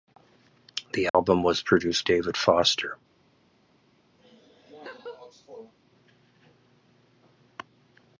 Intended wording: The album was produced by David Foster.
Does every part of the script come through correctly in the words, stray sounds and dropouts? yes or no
no